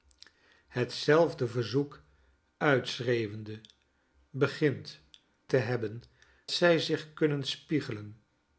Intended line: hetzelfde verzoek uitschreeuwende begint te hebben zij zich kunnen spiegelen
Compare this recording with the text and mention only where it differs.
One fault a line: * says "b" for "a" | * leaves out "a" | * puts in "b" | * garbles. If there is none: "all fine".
all fine